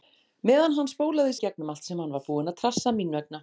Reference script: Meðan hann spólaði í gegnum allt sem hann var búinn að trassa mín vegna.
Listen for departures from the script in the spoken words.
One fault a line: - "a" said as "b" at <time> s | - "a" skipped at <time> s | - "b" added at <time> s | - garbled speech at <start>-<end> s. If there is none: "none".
none